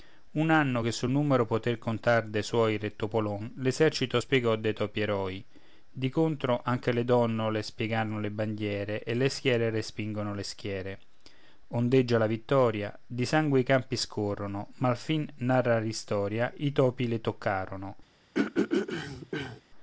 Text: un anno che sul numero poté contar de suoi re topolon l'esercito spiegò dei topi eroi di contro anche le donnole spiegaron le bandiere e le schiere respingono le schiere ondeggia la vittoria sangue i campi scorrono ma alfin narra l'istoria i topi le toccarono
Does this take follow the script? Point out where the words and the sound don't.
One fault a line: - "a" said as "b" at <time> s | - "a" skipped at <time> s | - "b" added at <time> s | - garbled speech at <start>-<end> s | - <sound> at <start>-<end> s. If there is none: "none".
- "di" added at 13.1 s
- throat clearing at 18.3-19.6 s